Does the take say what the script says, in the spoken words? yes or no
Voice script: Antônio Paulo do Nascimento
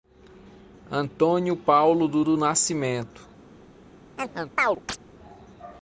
no